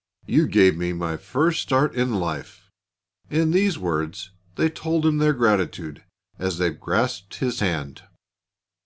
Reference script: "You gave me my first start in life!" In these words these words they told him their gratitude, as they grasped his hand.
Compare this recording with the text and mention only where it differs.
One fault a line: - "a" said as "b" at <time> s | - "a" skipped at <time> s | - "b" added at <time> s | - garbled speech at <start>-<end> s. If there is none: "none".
- "these words" skipped at 4.3 s